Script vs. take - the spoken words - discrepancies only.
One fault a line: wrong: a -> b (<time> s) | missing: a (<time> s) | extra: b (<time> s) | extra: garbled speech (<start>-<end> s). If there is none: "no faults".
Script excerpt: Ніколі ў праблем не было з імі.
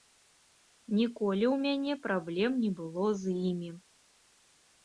extra: мяне (1.7 s)